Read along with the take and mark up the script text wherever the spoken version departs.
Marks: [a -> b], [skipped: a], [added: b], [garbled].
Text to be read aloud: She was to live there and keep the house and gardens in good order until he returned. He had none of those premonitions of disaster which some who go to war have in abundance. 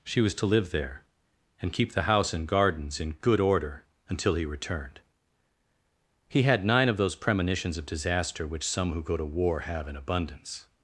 She was to live there and keep the house and gardens in good order until he returned. He had [none -> nine] of those premonitions of disaster which some who go to war have in abundance.